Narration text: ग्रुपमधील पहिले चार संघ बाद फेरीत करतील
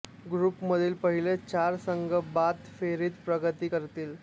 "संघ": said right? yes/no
yes